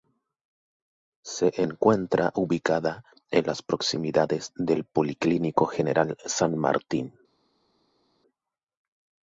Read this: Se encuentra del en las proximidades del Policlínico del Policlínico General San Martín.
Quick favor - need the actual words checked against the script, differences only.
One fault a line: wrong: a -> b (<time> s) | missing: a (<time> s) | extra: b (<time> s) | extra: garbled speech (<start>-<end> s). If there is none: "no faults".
wrong: del -> ubicada (2.3 s)
missing: del Policlínico (5.7 s)